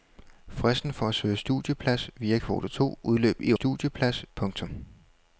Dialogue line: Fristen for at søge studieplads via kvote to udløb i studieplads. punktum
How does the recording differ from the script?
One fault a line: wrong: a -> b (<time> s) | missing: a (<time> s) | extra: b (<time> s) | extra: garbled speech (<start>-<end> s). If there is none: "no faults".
no faults